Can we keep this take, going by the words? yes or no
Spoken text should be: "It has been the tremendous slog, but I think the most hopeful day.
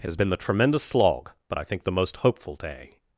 yes